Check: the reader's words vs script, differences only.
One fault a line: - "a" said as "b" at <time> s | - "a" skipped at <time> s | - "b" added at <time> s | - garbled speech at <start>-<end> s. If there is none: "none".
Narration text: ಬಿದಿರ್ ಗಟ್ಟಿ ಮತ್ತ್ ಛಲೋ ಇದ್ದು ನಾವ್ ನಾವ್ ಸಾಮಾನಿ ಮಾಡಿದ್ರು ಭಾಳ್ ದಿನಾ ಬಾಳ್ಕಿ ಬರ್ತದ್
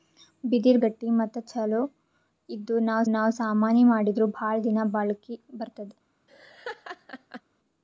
none